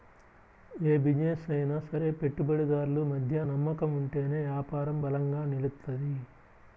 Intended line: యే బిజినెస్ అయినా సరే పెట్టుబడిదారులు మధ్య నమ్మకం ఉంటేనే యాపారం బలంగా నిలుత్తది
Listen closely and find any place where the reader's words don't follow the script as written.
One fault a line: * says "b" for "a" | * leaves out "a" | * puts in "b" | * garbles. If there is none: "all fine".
all fine